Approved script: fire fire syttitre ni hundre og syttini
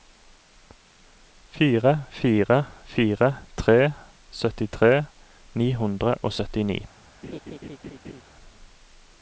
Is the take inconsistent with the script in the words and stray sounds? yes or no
yes